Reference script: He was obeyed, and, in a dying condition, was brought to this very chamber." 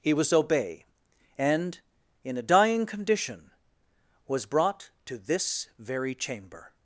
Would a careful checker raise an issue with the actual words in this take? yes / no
yes